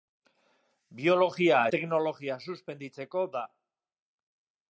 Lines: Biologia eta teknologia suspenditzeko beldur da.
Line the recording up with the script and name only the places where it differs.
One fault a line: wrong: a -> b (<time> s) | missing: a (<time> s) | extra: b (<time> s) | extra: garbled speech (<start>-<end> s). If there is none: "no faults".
missing: eta (1.6 s)
missing: beldur (3.2 s)